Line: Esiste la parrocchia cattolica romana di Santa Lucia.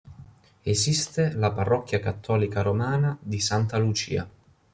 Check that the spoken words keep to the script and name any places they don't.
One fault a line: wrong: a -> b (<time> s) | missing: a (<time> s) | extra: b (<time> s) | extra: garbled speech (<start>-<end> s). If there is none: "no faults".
no faults